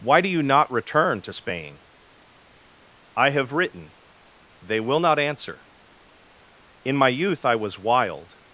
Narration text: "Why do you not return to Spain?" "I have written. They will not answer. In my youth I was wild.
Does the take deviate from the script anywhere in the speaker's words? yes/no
no